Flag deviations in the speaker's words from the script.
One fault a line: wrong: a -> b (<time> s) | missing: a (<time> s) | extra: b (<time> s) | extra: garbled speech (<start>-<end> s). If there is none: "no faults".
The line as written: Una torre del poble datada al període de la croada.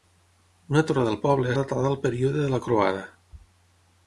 no faults